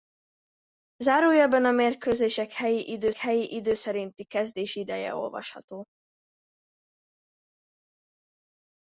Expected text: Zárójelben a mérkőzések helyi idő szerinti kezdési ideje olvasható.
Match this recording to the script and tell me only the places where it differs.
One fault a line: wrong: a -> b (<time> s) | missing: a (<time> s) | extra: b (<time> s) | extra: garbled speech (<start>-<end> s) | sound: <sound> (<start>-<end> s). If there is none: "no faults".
extra: helyi idő (3.2 s)